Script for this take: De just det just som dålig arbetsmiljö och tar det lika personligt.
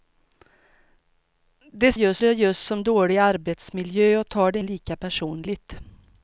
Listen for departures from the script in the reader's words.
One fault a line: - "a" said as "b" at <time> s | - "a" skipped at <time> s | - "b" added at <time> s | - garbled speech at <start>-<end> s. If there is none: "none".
none